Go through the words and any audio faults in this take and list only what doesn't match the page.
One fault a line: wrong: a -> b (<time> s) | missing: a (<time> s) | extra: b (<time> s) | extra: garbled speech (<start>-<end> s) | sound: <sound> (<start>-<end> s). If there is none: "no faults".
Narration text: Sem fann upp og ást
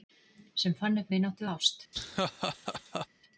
extra: vináttu (1.1 s)
sound: laugh (1.9-3.1 s)